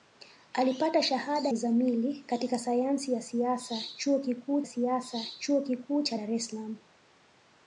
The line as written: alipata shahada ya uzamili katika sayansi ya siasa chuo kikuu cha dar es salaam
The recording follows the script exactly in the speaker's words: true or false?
false